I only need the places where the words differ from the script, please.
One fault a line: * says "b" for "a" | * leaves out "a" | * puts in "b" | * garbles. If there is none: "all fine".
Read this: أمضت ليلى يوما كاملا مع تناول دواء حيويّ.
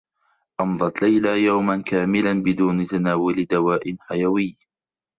* says "بدون" for "مع"